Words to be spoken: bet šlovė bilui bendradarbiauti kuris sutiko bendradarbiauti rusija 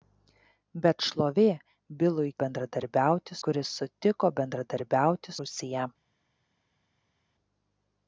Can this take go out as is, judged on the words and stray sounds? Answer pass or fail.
pass